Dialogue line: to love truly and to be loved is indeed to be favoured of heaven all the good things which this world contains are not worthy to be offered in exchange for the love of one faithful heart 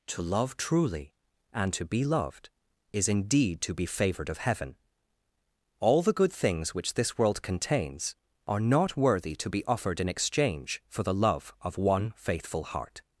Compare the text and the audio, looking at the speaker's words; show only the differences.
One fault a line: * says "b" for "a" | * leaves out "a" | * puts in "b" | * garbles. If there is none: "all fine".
all fine